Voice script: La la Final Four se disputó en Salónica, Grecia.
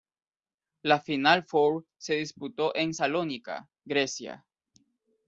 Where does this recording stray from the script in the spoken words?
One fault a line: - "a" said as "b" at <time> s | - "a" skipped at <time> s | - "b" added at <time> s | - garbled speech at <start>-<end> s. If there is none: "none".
- "la" skipped at 1.0 s